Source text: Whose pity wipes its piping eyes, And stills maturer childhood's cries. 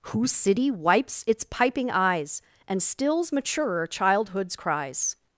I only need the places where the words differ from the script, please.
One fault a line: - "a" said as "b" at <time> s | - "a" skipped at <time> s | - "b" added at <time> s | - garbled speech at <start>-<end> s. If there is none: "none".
- "pity" said as "city" at 0.3 s